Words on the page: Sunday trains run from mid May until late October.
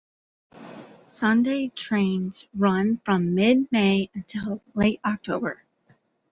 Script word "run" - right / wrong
right